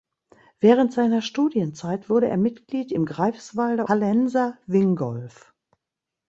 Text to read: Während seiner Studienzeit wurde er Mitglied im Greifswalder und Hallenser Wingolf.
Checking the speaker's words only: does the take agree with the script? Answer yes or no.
no